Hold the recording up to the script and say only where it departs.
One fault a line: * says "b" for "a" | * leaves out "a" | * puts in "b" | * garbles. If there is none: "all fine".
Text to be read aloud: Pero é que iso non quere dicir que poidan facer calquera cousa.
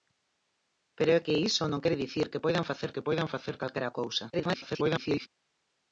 * puts in "que poidan facer"
* garbles